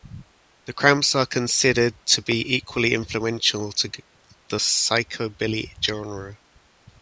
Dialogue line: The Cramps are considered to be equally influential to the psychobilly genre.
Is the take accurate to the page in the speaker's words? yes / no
yes